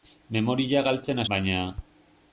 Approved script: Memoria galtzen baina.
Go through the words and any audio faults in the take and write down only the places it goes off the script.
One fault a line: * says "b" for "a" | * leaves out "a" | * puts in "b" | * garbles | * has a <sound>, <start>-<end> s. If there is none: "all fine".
all fine